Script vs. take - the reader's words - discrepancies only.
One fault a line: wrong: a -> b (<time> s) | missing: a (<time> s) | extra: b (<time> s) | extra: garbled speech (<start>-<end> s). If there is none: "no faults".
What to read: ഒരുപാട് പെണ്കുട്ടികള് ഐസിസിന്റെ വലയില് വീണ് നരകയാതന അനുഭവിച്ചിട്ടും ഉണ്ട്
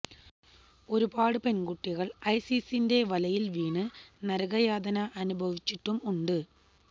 no faults